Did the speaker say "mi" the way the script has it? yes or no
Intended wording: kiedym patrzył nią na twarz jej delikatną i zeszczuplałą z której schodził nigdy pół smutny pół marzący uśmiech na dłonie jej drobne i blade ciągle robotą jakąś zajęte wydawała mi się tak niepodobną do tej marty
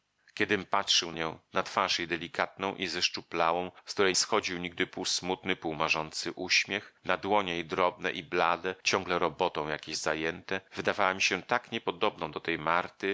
yes